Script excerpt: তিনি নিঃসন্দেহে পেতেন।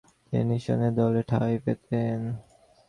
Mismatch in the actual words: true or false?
true